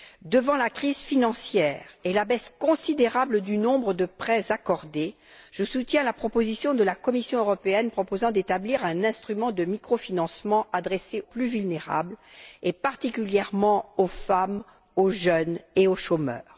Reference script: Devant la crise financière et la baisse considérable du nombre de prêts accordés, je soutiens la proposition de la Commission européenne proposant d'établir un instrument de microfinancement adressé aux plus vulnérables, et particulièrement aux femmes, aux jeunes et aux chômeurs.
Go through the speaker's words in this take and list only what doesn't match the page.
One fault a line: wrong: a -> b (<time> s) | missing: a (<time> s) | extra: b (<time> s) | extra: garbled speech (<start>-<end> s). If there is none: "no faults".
missing: aux (11.2 s)